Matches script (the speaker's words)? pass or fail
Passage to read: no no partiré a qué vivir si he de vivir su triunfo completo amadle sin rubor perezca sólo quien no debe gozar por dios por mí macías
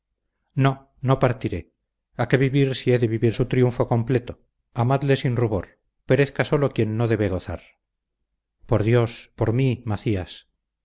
pass